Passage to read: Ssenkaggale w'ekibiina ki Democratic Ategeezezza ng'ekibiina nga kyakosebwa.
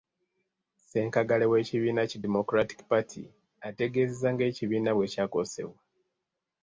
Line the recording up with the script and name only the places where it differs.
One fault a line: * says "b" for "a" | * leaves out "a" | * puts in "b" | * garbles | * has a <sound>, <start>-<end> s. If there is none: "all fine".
* puts in "Party"
* says "bwe" for "nga"